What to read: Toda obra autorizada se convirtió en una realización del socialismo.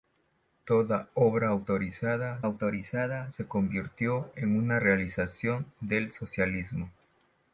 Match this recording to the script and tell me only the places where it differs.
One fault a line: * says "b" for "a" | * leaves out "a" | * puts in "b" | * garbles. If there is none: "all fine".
* puts in "autorizada"